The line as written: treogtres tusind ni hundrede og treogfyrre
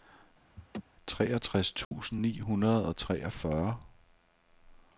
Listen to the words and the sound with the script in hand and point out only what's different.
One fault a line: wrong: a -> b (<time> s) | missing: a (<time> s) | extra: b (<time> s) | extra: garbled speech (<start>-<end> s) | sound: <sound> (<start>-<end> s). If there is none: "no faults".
sound: laugh (0.6-0.8 s)
sound: dropout (1.8-1.9 s)